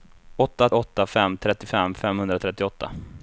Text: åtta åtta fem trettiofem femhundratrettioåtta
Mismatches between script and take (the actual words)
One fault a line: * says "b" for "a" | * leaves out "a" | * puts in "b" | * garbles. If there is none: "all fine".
all fine